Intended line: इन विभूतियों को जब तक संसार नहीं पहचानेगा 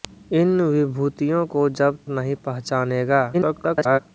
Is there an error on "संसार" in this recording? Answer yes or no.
yes